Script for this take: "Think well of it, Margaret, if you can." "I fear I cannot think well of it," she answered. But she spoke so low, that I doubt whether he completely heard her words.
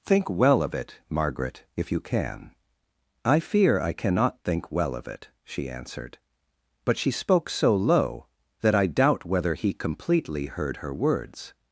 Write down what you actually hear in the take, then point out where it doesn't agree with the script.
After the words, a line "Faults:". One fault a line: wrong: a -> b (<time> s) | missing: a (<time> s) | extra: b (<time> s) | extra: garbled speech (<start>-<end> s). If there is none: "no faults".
"Think well of it, Margaret, if you can." "I fear I cannot think well of it," she answered. But she spoke so low, that I doubt whether he completely heard her words.
Faults:
no faults